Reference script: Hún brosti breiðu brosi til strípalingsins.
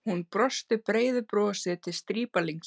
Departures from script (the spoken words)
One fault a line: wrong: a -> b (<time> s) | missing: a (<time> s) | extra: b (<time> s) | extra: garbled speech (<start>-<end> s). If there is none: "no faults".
no faults